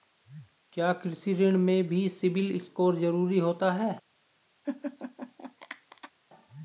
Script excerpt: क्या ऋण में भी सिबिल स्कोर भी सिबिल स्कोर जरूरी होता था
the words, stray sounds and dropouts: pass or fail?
fail